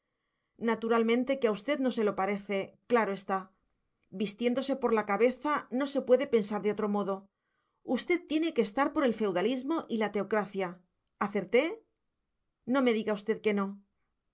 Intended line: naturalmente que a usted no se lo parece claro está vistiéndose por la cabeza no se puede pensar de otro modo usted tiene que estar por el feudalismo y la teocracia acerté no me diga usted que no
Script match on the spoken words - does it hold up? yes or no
yes